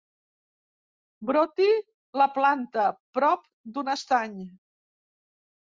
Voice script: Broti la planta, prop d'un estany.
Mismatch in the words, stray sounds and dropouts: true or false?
false